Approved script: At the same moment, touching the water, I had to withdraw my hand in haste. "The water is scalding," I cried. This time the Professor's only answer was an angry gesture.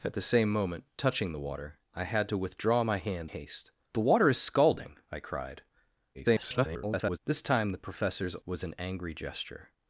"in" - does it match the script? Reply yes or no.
no